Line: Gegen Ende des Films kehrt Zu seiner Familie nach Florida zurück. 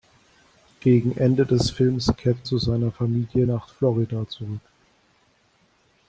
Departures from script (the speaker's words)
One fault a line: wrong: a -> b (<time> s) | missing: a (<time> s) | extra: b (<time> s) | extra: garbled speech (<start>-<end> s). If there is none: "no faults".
no faults